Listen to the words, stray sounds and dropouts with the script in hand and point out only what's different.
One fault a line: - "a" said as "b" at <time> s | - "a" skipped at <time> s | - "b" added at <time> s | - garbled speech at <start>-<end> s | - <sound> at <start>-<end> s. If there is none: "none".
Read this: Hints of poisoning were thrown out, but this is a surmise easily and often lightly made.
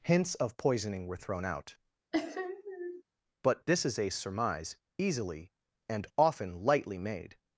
- sniff at 2.1-3.0 s